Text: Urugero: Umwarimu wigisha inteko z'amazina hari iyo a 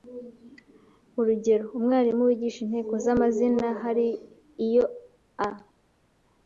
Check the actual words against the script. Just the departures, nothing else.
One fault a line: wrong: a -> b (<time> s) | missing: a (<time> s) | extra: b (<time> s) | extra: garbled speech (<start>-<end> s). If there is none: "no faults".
no faults